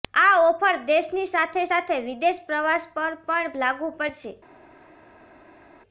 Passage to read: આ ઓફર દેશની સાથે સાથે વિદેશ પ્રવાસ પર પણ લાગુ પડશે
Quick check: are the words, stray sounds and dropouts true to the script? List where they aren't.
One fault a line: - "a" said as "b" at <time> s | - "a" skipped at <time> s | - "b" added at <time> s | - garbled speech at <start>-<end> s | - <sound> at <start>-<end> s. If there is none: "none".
none